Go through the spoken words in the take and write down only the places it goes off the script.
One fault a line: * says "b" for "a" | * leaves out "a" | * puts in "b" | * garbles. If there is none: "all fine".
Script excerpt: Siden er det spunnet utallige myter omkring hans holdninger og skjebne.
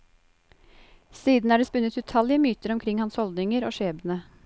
all fine